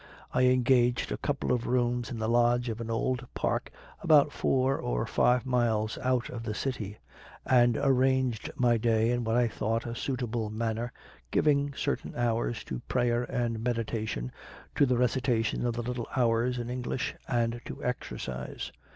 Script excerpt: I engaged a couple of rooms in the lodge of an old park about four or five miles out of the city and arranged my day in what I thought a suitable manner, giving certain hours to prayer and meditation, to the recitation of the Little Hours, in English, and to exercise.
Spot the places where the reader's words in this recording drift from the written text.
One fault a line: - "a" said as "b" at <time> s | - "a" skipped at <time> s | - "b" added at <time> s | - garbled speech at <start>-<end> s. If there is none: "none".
none